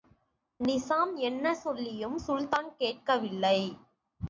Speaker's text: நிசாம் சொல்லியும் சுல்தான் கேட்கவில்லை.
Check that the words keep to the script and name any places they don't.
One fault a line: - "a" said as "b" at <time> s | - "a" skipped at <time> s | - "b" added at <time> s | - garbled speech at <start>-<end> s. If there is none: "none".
- "என்ன" added at 1.2 s